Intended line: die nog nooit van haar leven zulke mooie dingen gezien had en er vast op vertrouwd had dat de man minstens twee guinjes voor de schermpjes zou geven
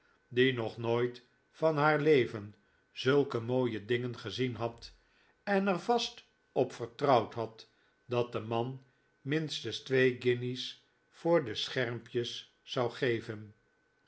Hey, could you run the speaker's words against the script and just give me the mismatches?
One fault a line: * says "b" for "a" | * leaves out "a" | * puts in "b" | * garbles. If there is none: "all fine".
all fine